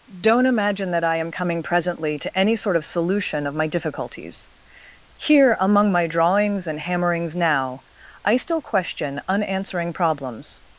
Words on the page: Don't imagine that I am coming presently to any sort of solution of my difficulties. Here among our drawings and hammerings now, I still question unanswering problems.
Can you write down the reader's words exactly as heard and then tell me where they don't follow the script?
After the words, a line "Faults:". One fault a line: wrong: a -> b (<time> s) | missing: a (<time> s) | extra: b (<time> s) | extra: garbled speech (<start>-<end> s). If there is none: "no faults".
Don't imagine that I am coming presently to any sort of solution of my difficulties. Here among my drawings and hammerings now, I still question unanswering problems.
Faults:
wrong: our -> my (5.9 s)